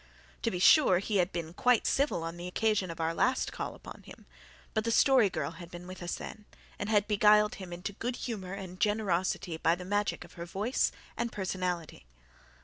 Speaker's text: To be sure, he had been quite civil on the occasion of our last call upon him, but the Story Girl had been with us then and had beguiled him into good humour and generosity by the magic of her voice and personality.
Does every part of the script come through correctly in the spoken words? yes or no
yes